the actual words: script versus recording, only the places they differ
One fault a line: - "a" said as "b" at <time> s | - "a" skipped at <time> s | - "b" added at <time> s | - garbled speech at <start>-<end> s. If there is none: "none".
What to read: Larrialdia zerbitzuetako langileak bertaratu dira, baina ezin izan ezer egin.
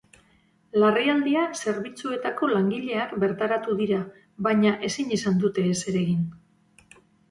- "dute" added at 5.5 s